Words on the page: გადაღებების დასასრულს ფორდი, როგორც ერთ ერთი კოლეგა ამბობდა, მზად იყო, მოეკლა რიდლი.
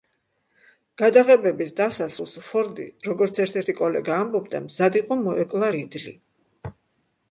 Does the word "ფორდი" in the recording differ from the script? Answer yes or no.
no